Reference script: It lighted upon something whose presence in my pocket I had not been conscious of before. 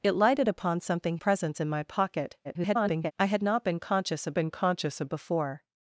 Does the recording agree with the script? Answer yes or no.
no